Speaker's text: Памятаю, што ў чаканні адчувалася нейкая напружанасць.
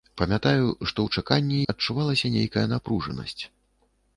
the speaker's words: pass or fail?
pass